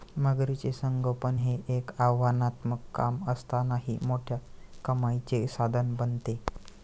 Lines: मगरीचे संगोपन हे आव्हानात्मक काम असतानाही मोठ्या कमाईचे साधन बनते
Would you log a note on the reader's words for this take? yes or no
yes